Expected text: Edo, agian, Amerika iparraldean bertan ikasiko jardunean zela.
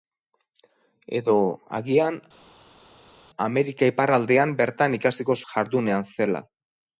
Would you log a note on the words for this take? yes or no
no